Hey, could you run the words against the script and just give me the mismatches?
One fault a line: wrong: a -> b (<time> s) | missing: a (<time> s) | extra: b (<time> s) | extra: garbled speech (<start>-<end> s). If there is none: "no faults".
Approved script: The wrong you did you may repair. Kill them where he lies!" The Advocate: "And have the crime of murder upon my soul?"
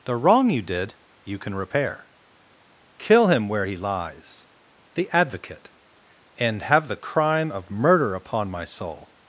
wrong: may -> can (1.4 s)
wrong: them -> him (3.3 s)